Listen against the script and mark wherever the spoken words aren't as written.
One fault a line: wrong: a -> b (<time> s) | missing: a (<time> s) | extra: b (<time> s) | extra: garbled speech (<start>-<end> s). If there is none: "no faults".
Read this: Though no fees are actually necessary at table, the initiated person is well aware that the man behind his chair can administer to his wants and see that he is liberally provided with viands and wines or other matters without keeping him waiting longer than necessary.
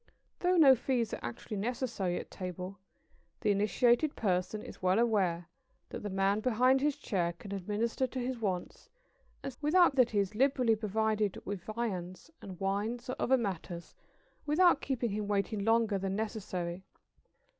wrong: see -> without (9.6 s)